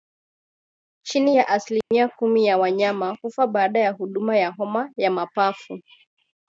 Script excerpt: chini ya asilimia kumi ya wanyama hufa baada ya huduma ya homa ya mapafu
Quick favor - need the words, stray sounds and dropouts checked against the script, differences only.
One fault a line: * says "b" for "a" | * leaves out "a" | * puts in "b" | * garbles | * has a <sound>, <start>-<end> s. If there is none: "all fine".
* has a dropout, 1.8-1.9 s